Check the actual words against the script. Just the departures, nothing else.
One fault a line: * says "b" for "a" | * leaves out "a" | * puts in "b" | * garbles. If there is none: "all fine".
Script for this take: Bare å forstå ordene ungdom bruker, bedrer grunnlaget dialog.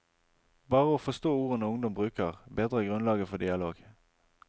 * puts in "for"